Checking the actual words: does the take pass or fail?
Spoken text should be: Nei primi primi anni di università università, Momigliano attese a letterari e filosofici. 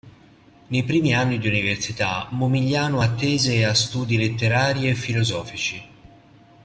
fail